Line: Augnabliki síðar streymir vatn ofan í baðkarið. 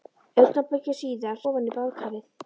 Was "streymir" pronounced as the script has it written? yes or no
no